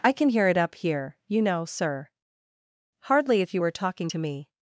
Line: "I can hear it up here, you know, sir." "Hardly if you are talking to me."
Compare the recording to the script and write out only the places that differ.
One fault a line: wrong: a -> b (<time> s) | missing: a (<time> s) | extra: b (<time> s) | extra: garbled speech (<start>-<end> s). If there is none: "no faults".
wrong: are -> were (3.6 s)